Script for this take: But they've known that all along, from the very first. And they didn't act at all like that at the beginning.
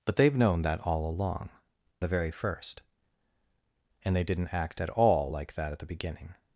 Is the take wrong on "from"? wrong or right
wrong